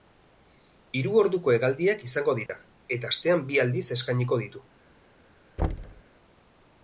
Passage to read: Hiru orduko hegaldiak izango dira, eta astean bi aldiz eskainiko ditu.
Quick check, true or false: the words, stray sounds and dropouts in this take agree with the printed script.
false